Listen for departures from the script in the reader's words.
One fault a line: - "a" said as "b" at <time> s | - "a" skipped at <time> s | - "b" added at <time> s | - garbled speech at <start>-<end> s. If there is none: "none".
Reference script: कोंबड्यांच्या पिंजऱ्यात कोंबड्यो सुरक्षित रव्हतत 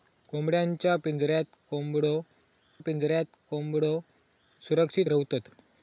- "पिंजऱ्यात कोंबड्यो" added at 2.8 s